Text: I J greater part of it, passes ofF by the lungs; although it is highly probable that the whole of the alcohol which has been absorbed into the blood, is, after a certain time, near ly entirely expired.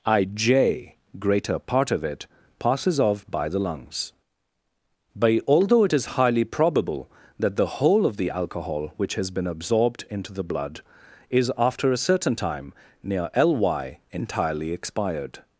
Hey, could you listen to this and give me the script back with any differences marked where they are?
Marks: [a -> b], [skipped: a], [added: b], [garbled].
I J greater part of it, passes ofF by the lungs; [added: but] although it is highly probable that the whole of the alcohol which has been absorbed into the blood, is, after a certain time, near ly entirely expired.